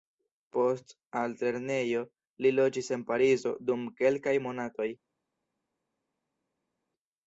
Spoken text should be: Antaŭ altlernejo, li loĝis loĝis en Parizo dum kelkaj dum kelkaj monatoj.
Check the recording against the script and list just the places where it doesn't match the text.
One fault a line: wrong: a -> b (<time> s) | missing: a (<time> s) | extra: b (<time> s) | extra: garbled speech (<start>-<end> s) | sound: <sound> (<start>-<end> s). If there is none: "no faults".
wrong: Antaŭ -> Post (0.6 s)
missing: loĝis (2.9 s)
missing: dum kelkaj (4.4 s)